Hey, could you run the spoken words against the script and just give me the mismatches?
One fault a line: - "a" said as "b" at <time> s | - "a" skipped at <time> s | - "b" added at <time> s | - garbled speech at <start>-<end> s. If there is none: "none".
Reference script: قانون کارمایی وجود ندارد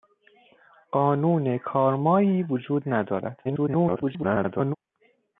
- garbled speech at 3.4-4.8 s